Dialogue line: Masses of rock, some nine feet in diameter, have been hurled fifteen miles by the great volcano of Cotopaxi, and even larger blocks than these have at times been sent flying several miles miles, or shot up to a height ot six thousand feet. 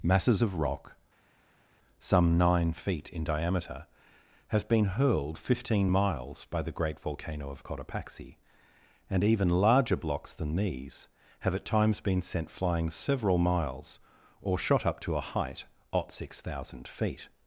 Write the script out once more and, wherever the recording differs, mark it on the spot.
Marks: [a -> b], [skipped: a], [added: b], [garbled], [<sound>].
Masses of rock, some nine feet in diameter, have been hurled fifteen miles by the great volcano of Cotopaxi, and even larger blocks than these have at times been sent flying several miles [skipped: miles,] or shot up to a height ot six thousand feet.